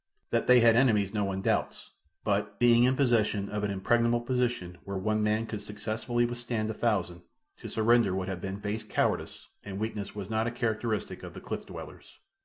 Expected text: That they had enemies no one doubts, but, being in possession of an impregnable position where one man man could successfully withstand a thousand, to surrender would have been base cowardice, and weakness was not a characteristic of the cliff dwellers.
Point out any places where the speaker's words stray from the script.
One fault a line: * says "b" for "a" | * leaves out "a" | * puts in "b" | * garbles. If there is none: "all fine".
* leaves out "man"